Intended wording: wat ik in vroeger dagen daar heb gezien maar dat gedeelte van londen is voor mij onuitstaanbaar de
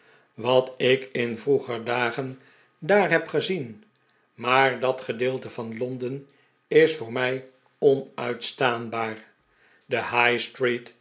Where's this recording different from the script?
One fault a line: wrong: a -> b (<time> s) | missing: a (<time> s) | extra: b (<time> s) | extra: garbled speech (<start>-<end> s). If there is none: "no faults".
no faults